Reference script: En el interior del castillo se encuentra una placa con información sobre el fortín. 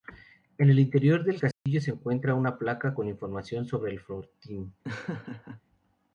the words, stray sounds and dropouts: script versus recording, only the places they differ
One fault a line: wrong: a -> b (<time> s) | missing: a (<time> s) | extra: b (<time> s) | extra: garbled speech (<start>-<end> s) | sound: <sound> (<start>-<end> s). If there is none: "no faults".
sound: dropout (1.5-1.7 s)
sound: laugh (4.8-5.6 s)